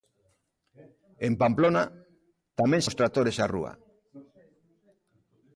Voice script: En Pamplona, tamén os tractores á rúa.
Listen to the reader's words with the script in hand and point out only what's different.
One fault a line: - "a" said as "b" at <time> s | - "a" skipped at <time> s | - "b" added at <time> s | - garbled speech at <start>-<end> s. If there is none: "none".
none